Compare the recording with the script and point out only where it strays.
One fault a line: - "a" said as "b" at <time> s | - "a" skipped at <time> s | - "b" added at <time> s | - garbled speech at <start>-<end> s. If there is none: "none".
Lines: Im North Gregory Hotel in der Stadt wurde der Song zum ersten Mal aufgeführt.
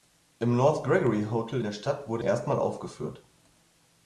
- "in" skipped at 1.6 s
- "der Song zum" skipped at 2.2 s